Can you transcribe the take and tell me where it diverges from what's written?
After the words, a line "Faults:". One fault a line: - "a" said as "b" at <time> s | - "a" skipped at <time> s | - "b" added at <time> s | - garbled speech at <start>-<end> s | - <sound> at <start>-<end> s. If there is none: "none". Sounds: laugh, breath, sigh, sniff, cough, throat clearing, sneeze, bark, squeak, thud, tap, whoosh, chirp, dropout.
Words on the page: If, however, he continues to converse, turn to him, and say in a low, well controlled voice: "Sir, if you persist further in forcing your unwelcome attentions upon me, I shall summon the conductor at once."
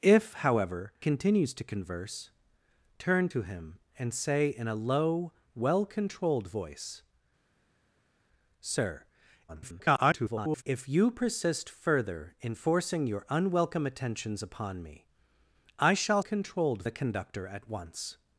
If, however, continues to converse, turn to him, and say in a low, well controlled voice: "Sir, [garbled] if you persist further in forcing your unwelcome attentions upon me, I shall controlled the conductor at once."
Faults:
- "he" skipped at 0.9 s
- garbled speech at 9.5-10.6 s
- "summon" said as "controlled" at 16.2 s